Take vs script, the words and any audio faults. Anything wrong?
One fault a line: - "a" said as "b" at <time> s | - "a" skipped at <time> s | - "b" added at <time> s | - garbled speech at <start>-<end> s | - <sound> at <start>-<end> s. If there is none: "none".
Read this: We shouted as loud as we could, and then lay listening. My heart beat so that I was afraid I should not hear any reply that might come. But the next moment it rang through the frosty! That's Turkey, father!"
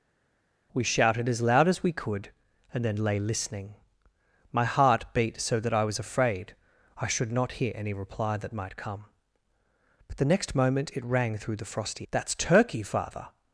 none